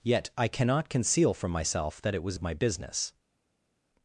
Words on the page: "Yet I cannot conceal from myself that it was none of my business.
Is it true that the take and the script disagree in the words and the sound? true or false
true